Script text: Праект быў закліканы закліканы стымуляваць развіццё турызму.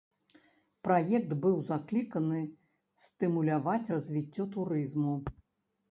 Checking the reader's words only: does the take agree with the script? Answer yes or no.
no